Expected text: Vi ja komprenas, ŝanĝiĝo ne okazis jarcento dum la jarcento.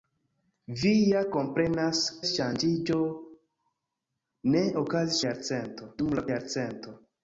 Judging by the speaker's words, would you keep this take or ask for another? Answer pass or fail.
pass